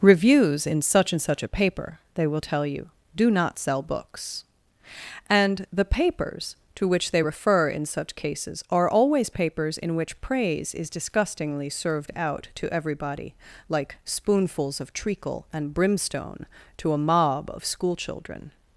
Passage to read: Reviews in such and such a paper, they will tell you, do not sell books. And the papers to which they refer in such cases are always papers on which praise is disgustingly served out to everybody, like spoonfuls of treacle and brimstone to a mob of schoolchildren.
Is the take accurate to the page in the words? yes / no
no